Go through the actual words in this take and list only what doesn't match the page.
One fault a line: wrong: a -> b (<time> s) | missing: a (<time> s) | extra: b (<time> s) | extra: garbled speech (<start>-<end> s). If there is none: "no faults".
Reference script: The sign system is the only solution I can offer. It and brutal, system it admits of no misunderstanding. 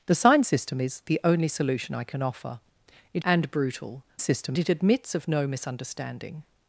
no faults